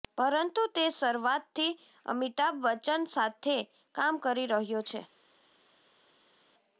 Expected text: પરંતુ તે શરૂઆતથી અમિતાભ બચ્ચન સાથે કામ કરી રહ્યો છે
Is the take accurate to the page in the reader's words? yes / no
yes